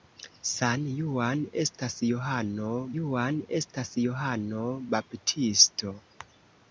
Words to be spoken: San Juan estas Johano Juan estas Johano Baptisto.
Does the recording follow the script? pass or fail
pass